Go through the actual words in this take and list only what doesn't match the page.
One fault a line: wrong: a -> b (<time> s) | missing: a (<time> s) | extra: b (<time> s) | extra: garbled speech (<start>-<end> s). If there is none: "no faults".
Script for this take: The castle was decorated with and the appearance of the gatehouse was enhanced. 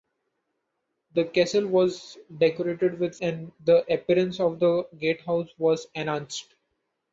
no faults